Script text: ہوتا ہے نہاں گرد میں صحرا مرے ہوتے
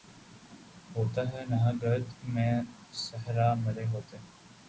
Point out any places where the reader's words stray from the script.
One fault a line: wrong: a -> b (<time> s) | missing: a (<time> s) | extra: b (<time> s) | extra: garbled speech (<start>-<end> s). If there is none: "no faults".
no faults